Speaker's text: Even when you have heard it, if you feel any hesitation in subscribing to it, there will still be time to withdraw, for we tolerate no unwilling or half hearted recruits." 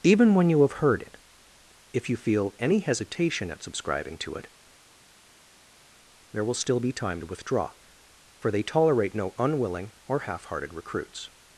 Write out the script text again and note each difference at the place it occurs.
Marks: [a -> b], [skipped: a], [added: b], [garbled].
Even when you have heard it, if you feel any hesitation [in -> at] subscribing to it, there will still be time to withdraw, for [we -> they] tolerate no unwilling or half hearted recruits."